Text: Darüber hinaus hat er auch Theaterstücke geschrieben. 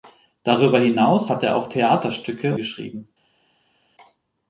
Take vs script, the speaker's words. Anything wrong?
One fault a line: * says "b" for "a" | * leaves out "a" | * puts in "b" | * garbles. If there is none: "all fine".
all fine